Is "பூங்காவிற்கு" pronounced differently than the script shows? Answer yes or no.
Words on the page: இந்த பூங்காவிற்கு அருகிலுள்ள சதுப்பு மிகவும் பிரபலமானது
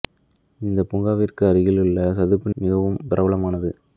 no